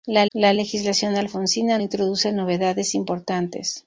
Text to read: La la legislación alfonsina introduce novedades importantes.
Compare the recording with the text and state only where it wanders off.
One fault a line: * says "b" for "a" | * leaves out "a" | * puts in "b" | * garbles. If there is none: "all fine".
all fine